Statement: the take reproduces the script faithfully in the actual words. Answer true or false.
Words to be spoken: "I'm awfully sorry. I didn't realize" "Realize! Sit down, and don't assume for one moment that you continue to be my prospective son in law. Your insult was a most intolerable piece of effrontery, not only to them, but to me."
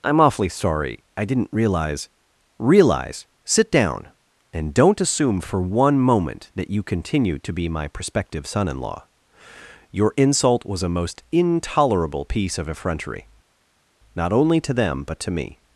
true